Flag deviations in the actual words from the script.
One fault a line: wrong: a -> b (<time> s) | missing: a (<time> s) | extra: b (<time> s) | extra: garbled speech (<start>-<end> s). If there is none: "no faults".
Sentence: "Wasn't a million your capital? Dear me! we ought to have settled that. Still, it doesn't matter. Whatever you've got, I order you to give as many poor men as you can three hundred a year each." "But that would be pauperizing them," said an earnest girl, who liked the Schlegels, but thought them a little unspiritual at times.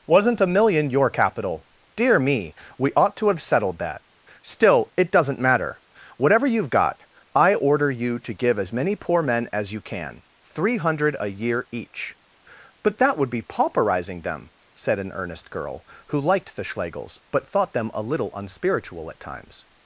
no faults